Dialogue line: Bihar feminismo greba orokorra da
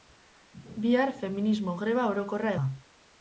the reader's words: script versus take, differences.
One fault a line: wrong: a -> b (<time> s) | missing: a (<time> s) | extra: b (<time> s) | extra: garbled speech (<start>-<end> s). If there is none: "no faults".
no faults